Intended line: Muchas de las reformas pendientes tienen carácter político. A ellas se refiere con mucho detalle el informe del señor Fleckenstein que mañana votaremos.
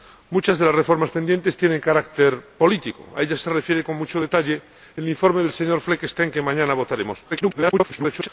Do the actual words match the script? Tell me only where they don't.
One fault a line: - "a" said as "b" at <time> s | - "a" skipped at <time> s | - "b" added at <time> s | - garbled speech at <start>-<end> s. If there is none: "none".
- garbled speech at 7.3-8.3 s